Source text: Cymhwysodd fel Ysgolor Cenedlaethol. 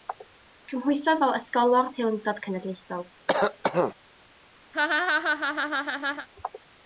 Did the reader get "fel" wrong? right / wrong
right